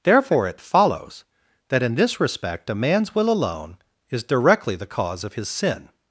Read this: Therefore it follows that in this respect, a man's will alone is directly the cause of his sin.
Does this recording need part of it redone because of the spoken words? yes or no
no